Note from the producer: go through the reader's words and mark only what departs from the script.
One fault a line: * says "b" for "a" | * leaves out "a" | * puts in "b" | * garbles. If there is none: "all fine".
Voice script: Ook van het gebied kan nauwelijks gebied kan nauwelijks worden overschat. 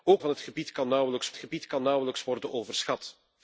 all fine